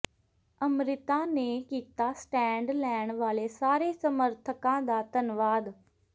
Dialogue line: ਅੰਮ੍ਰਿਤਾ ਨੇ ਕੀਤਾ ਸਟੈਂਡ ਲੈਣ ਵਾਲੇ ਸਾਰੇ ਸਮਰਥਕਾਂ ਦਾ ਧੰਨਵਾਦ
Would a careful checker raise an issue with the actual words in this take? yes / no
no